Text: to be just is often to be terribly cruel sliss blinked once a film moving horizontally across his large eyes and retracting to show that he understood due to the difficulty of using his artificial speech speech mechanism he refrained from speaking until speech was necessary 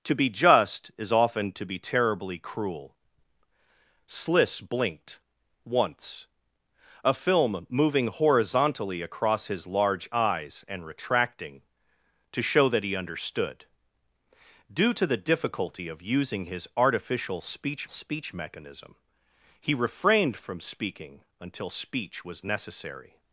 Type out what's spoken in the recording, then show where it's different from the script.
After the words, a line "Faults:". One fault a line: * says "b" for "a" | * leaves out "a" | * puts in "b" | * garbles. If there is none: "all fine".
to be just is often to be terribly cruel sliss blinked once a film moving horizontally across his large eyes and retracting to show that he understood due to the difficulty of using his artificial speech speech mechanism he refrained from speaking until speech was necessary
Faults:
all fine